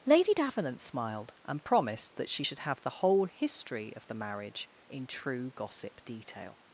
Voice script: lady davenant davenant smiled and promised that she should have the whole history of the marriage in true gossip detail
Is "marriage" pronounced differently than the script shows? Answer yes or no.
no